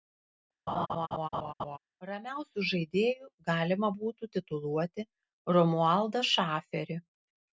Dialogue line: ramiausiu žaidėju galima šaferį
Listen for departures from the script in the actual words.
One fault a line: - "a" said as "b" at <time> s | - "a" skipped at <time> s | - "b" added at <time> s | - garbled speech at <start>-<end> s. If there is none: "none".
- "būtų tituluoti romualdą" added at 3.9 s